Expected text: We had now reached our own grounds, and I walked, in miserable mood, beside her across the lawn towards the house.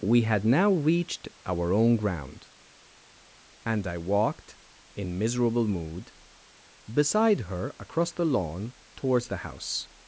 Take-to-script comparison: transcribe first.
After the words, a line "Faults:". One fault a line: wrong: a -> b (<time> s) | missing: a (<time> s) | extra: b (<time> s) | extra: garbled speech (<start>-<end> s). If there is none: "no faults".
We had now reached our own ground, and I walked, in miserable mood, beside her across the lawn towards the house.
Faults:
wrong: grounds -> ground (1.9 s)